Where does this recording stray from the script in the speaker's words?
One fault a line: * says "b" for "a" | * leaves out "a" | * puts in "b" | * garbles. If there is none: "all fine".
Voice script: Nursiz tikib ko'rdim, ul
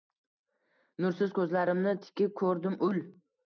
* puts in "ko'zlarimni"